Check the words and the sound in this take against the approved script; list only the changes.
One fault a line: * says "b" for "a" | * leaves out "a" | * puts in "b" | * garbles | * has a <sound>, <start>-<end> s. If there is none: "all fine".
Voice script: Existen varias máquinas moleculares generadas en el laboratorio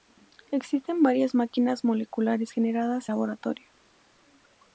* leaves out "en el"